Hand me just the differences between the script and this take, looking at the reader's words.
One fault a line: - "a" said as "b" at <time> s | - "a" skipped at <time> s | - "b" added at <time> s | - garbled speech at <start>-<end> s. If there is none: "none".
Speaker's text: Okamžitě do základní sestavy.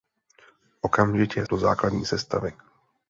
none